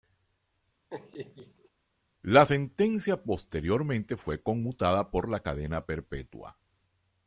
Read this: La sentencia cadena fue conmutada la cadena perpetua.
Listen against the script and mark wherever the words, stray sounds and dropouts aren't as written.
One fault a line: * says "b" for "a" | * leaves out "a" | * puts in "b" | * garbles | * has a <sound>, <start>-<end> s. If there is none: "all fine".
* has a laugh, 0.9-1.7 s
* says "posteriormente" for "cadena"
* puts in "por"